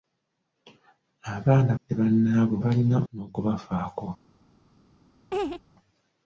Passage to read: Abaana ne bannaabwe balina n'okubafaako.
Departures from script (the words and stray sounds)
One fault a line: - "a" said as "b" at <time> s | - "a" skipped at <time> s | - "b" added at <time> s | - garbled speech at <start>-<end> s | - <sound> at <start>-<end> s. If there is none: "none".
- laugh at 5.3-5.6 s